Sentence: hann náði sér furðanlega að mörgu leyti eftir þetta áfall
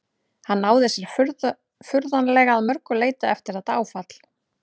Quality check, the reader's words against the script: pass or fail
pass